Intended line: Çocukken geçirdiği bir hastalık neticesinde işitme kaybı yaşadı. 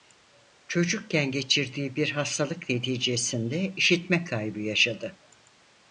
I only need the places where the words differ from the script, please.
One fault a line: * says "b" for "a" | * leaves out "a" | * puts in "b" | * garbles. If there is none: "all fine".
all fine